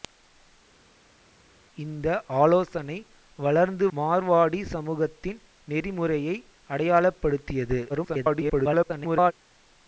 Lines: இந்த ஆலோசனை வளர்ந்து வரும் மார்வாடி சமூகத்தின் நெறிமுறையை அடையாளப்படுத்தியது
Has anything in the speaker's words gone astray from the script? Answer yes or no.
yes